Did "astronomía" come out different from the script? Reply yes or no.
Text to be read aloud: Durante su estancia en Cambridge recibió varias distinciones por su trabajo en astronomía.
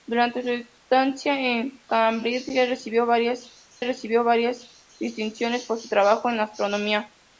no